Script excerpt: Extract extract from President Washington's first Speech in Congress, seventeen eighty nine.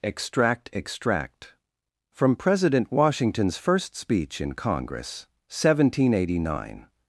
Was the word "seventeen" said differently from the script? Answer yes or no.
no